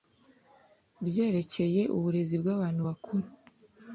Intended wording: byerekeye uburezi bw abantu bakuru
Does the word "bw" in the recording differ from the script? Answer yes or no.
no